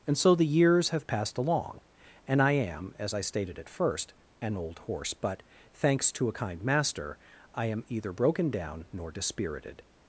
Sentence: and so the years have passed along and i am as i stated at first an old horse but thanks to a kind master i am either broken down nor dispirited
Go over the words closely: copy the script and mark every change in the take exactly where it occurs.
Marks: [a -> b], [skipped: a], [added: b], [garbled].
and so the years have passed along and i am as i stated at first an old horse but thanks to a kind master i am either broken down nor dispirited